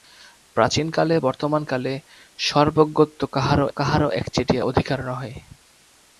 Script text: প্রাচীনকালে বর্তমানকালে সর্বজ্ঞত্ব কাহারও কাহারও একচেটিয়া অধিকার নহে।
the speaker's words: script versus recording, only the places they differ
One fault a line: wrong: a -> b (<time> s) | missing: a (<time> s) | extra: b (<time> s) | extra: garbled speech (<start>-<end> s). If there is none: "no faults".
no faults